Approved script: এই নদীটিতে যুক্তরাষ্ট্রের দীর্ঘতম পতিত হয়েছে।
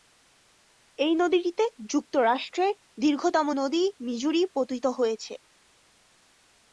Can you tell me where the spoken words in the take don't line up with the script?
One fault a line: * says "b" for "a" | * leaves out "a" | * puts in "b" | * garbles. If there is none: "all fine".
* puts in "নদী মিজুরি"